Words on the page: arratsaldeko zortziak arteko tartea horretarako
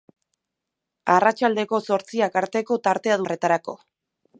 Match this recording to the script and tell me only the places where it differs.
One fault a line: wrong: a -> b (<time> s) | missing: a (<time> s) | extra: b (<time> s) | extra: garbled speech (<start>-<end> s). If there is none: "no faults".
no faults